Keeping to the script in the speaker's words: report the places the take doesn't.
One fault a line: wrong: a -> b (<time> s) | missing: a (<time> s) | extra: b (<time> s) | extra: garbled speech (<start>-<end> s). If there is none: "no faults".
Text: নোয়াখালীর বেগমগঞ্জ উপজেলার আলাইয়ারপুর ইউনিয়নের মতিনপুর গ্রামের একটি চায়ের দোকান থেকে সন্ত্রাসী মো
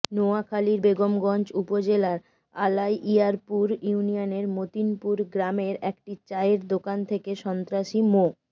no faults